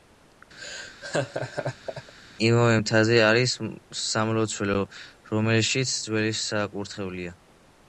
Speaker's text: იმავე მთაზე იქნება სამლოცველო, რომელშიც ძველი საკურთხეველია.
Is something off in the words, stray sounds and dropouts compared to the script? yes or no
yes